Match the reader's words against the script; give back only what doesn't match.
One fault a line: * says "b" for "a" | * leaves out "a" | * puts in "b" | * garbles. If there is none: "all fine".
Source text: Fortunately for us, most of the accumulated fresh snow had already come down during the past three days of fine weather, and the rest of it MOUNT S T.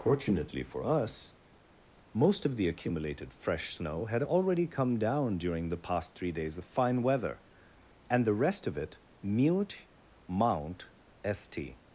* puts in "mute"